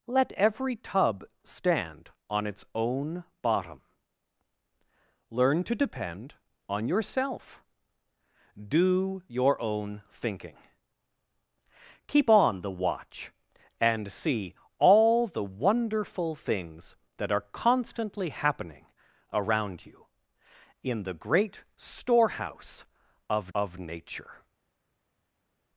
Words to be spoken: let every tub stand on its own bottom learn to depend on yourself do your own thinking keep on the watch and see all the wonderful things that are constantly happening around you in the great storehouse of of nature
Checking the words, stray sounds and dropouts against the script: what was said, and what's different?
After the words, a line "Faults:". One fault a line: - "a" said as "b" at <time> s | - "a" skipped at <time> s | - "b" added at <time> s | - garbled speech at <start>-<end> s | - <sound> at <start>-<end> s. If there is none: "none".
let every tub stand on its own bottom learn to depend on yourself do your own thinking keep on the watch and see all the wonderful things that are constantly happening around you in the great storehouse of of nature
Faults:
none